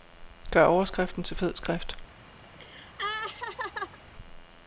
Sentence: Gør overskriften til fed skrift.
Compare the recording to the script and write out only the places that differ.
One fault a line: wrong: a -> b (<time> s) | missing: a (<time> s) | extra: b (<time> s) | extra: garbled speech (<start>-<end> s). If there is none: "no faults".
no faults